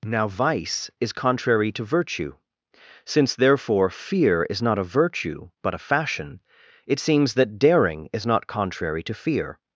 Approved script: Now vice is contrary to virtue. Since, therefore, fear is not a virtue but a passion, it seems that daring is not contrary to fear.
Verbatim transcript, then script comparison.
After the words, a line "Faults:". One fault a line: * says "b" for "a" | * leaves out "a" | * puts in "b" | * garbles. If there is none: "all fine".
Now vice is contrary to virtue. Since, therefore, fear is not a virtue but a fashion, it seems that daring is not contrary to fear.
Faults:
* says "fashion" for "passion"